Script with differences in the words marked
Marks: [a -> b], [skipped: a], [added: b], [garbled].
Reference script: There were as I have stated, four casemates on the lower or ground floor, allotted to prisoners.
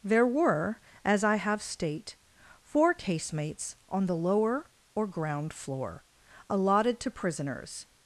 There were as I have [stated, -> state] four casemates on the lower or ground floor, allotted to prisoners.